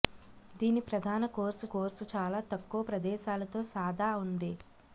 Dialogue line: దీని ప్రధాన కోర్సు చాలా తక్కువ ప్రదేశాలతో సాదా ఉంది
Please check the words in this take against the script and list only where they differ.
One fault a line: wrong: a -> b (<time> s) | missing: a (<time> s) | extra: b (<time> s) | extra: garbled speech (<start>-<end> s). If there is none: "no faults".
extra: కోర్సు (1.7 s)